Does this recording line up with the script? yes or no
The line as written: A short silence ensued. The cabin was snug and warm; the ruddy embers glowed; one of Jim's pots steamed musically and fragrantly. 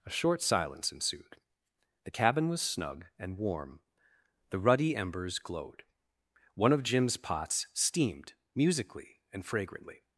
yes